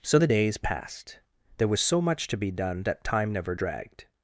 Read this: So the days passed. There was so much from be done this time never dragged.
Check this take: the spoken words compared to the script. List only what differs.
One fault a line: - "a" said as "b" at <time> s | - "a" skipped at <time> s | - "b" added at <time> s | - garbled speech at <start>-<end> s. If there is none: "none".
- "from" said as "to" at 2.3 s
- "this" said as "that" at 2.8 s